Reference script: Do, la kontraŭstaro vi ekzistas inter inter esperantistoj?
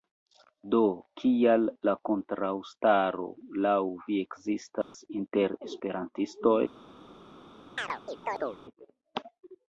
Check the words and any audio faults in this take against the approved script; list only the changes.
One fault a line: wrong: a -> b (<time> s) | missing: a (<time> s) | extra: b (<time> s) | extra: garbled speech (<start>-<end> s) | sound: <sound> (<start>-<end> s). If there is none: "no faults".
extra: kial (1.2 s)
extra: laŭ (3.6 s)
sound: dropout (4.8-4.9 s)
missing: inter (5.6 s)
sound: chirp (7.8-8.6 s)